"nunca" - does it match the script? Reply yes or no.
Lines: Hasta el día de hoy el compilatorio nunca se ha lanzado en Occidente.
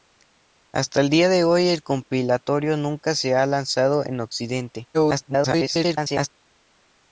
yes